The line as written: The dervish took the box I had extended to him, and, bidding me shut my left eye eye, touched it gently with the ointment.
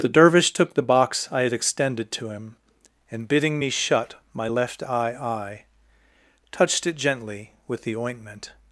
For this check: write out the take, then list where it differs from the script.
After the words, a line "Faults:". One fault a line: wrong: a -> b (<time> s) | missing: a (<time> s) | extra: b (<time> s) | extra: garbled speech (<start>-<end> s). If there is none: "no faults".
The dervish took the box I had extended to him, and, bidding me shut my left eye eye, touched it gently with the ointment.
Faults:
no faults